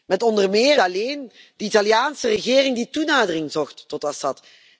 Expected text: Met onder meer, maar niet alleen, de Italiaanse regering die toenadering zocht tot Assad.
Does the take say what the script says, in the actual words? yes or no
no